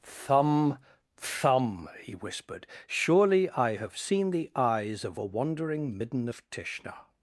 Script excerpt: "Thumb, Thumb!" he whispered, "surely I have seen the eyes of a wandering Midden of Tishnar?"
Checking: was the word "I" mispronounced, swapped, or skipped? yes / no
no